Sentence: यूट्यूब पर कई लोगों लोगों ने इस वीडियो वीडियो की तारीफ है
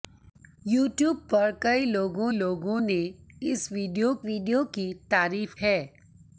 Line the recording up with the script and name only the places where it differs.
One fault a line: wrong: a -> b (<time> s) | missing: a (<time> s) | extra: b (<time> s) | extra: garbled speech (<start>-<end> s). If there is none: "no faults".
no faults